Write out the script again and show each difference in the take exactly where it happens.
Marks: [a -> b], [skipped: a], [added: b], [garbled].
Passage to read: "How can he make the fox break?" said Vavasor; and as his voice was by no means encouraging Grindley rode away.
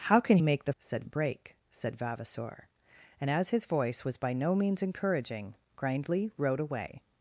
"How can [skipped: he] make the [fox -> said] break?" said Vavasor; and as his voice was by no means encouraging Grindley rode away.